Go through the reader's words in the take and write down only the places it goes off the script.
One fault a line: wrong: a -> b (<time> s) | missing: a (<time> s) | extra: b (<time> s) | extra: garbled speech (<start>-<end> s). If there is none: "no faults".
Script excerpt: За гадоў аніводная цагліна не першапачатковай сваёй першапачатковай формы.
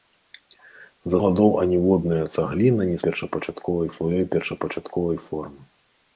no faults